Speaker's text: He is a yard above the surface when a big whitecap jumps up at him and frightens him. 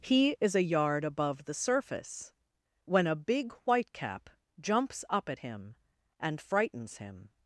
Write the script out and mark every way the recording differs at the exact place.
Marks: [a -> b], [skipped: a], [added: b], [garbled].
He is a yard above the surface when a big whitecap jumps up at him and frightens him.